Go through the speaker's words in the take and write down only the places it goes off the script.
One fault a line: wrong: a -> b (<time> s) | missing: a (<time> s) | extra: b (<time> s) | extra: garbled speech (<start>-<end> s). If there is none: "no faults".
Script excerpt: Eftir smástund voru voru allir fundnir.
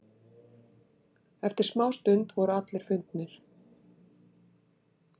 missing: voru (2.6 s)